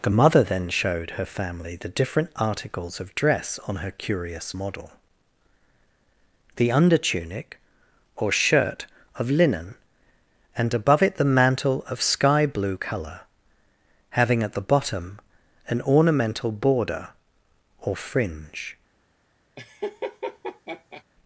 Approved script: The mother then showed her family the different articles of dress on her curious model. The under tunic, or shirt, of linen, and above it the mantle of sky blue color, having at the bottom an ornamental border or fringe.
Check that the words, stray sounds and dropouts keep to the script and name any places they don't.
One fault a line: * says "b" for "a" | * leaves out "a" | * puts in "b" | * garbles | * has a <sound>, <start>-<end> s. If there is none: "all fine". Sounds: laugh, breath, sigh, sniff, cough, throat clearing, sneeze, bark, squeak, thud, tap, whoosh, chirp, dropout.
* has a laugh, 19.6-21.0 s